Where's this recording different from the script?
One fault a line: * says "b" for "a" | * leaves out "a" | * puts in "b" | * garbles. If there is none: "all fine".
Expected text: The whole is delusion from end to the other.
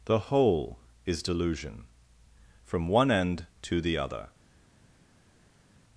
* puts in "one"